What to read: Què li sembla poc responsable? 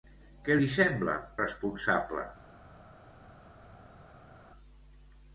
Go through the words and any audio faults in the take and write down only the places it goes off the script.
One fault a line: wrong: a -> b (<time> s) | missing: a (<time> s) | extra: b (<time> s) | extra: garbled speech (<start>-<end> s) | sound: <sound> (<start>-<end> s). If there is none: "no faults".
missing: poc (1.2 s)